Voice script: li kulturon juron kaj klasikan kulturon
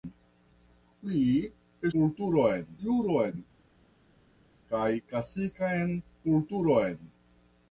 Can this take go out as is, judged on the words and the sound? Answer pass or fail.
pass